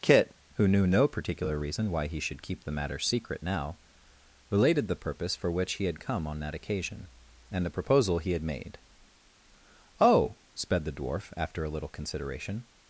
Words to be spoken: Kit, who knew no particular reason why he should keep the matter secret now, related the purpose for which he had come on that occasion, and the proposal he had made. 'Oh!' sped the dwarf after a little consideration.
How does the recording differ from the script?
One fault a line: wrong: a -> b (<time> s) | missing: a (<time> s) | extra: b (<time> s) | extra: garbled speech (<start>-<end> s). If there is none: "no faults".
no faults